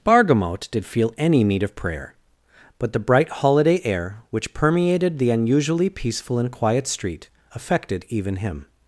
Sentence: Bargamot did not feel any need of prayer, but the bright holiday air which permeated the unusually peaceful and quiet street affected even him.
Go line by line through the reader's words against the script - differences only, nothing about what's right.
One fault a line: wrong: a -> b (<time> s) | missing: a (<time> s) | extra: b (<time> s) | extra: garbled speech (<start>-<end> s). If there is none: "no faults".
missing: not (0.8 s)